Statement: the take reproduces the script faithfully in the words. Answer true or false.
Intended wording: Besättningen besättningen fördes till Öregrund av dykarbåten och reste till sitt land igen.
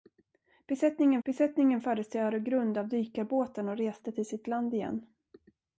true